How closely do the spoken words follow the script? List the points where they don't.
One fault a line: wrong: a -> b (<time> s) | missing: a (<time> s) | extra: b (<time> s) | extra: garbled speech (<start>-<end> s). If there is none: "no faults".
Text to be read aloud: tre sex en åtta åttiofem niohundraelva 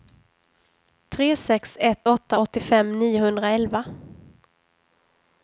wrong: en -> ett (1.8 s)